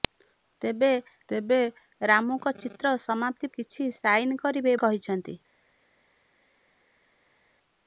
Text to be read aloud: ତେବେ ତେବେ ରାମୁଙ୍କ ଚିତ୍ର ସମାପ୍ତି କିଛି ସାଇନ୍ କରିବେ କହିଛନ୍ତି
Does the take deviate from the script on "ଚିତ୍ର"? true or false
false